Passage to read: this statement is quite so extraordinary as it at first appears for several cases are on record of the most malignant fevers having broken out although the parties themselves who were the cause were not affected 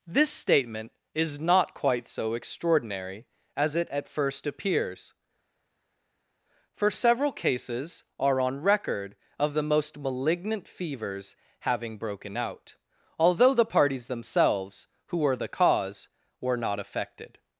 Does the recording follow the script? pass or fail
fail